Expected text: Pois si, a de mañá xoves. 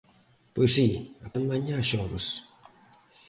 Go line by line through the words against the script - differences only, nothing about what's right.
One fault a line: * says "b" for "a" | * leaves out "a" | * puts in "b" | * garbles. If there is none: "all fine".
all fine